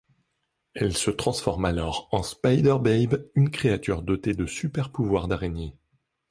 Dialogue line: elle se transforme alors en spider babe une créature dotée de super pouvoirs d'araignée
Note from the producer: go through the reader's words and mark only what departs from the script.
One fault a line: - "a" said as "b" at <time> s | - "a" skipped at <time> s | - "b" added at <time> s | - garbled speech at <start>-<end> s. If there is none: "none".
none